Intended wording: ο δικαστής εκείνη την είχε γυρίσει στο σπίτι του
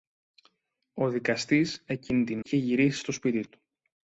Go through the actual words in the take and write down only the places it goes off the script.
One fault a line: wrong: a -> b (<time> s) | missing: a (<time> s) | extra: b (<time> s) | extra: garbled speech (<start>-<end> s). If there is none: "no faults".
no faults